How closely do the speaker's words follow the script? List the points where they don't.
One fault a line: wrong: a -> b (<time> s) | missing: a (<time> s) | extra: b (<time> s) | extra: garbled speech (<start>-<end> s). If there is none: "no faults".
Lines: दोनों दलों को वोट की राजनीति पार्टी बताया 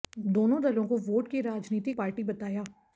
no faults